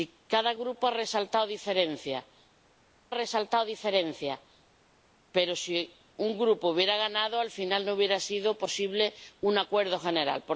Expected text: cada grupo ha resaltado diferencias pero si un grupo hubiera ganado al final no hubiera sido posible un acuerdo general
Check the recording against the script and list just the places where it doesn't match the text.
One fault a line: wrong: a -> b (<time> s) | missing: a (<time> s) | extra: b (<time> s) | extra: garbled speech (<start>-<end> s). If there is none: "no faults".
extra: resaltado diferencias (3.1 s)